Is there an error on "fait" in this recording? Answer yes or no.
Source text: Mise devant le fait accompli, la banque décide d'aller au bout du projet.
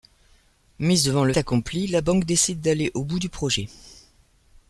yes